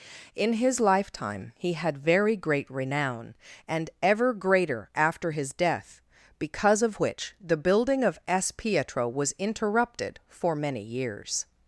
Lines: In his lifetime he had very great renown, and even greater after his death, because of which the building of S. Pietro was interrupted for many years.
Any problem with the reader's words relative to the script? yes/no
yes